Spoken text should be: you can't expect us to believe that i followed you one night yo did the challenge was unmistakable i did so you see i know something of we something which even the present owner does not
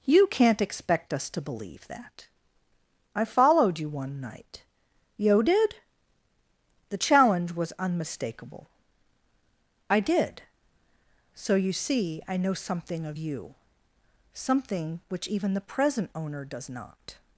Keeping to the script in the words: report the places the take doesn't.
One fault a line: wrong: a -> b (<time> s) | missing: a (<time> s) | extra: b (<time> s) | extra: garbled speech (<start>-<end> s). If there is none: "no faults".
wrong: we -> you (13.2 s)